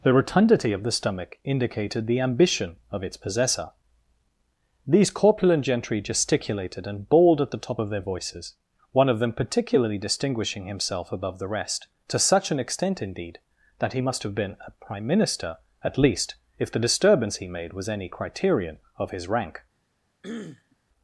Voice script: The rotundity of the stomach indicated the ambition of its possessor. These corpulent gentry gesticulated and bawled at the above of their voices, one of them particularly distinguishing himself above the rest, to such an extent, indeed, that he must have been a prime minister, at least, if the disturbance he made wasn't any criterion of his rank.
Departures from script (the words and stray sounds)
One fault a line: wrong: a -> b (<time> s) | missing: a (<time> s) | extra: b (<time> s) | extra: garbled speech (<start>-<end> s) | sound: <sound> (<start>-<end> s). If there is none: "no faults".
wrong: above -> top (7.6 s)
wrong: wasn't -> was (17.7 s)
sound: throat clearing (20.2-20.8 s)